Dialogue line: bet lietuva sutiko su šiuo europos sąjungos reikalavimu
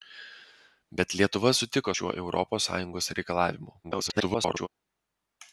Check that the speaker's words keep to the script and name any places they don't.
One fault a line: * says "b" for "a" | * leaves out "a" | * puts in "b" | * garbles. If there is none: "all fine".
* leaves out "su"
* garbles